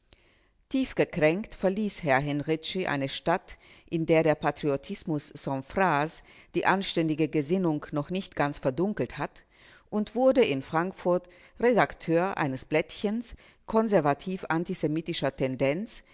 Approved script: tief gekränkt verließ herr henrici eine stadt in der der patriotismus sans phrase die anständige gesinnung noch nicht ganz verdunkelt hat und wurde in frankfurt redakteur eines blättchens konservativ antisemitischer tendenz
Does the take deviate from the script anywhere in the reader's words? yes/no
no